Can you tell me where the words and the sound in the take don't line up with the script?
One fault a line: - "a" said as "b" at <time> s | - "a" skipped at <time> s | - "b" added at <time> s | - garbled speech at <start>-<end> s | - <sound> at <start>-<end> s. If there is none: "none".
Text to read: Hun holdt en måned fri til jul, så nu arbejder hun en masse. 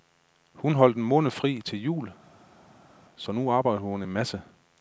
none